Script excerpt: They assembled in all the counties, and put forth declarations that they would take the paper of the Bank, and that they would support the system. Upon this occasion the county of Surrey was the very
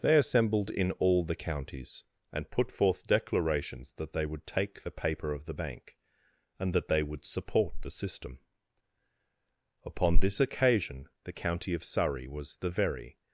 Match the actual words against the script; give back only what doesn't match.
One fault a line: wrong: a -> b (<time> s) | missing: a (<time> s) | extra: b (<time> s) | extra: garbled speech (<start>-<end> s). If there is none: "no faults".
no faults